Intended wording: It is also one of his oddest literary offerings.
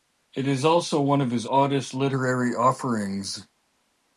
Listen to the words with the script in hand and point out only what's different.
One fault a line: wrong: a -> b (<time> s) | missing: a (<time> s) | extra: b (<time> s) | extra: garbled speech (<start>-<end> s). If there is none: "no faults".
no faults